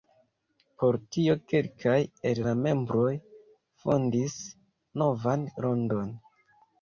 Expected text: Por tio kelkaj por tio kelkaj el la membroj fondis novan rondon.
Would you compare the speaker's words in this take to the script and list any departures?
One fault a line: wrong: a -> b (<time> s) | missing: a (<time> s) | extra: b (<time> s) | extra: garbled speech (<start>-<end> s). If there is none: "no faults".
missing: por tio kelkaj (2.0 s)